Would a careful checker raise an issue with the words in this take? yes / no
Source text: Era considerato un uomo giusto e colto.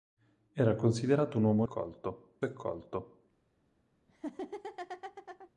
yes